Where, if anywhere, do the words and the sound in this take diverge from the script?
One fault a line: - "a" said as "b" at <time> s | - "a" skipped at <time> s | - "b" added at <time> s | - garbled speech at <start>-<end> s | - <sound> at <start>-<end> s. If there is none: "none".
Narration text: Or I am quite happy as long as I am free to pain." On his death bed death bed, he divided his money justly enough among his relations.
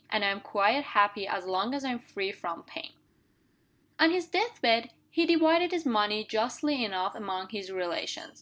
- "Or" said as "And" at 0.1 s
- "to" said as "from" at 2.3 s
- "death bed" skipped at 4.9 s